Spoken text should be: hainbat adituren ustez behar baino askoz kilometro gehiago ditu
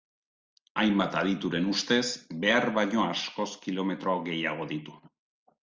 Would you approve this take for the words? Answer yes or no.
yes